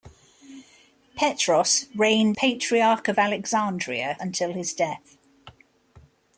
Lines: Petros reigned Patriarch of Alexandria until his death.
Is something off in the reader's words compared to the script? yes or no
no